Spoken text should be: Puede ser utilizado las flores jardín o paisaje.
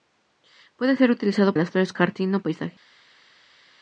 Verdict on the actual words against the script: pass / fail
pass